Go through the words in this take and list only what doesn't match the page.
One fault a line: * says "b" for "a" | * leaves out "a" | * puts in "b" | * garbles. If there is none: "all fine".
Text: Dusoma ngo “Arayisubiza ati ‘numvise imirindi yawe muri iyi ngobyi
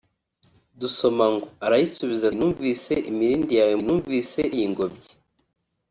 * leaves out "ati"
* says "numvise" for "muri"